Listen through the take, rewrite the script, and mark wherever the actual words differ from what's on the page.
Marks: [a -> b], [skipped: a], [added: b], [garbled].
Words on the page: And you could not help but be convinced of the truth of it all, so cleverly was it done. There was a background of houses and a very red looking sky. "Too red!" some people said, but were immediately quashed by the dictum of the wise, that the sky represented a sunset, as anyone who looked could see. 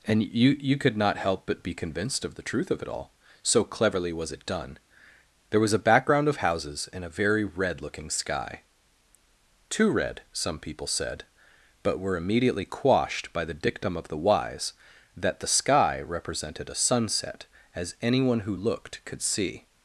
And you [added: you] could not help but be convinced of the truth of it all, so cleverly was it done. There was a background of houses and a very red looking sky. "Too red!" some people said, but were immediately quashed by the dictum of the wise, that the sky represented a sunset, as anyone who looked could see.